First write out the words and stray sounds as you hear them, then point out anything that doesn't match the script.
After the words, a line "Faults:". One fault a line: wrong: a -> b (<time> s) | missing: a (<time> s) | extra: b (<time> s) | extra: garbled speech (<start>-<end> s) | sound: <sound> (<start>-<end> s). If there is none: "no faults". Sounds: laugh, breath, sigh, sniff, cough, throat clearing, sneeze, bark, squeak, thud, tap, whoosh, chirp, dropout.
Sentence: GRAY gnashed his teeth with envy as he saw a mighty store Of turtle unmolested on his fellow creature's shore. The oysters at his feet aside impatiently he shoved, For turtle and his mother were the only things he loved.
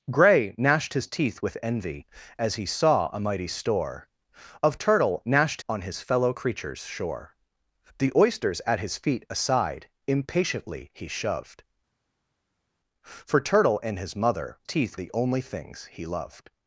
GRAY gnashed his teeth with envy as he saw a mighty store Of turtle gnashed on his fellow creature's shore. The oysters at his feet aside impatiently he shoved, For turtle and his mother teeth the only things he loved.
Faults:
wrong: unmolested -> gnashed (5.2 s)
wrong: were -> teeth (14.6 s)